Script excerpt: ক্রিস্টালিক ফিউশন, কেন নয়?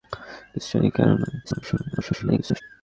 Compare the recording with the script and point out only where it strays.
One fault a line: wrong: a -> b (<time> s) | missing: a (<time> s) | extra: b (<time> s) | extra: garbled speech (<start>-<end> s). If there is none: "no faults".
missing: ফিউশন (0.9 s)
extra: garbled speech (1.4-2.6 s)